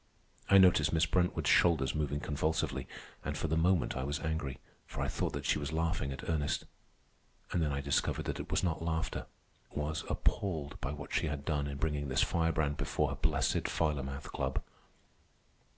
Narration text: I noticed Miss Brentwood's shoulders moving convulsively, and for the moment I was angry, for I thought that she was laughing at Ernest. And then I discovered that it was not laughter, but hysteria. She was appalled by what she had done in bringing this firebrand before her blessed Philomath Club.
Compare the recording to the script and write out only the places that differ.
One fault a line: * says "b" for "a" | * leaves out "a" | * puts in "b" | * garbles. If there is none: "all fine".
* leaves out "but hysteria She"